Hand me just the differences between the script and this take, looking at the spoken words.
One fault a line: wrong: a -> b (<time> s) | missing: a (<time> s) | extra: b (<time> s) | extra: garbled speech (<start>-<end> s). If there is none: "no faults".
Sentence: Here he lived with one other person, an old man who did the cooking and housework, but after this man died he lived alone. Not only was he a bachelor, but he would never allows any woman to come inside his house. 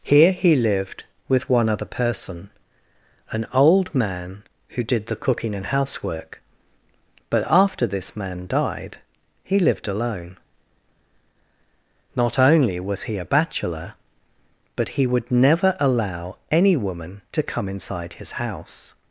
wrong: allows -> allow (15.8 s)